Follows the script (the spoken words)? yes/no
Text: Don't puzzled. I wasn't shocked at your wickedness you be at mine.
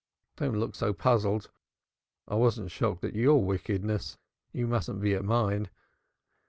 no